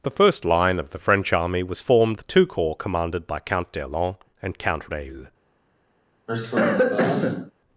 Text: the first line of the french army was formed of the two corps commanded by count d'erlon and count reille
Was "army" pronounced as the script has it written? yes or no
yes